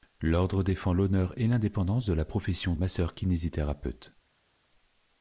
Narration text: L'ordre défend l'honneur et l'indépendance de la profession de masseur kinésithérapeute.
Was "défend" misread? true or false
false